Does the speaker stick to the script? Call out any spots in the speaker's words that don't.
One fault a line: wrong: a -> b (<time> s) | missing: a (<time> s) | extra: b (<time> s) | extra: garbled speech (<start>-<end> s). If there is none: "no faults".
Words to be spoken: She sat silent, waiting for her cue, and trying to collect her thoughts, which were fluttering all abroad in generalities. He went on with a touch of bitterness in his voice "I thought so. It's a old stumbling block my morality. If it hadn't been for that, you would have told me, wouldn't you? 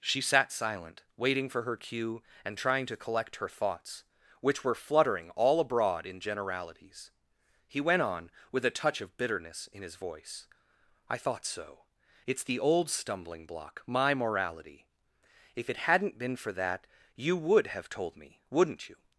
wrong: a -> the (12.4 s)